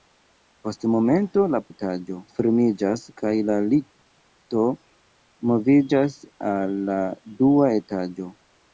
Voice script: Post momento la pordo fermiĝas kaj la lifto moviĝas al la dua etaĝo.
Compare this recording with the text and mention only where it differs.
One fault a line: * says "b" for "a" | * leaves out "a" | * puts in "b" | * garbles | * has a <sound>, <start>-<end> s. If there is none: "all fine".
* says "etaĝo" for "pordo"